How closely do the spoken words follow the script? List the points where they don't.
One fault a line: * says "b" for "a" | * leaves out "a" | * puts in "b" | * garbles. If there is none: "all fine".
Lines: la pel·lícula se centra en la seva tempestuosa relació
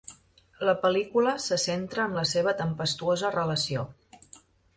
all fine